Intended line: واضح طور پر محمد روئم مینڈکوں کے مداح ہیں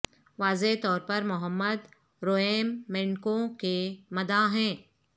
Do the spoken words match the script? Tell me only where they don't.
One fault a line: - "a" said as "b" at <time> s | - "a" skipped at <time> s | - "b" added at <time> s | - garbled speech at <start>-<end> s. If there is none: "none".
none